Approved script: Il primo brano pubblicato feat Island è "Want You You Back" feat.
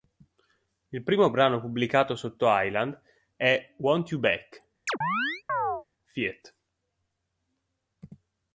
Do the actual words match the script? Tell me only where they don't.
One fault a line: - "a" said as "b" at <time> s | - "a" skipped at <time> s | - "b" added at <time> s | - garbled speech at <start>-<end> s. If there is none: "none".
- "feat" said as "sotto" at 2.1 s
- "You" skipped at 4.2 s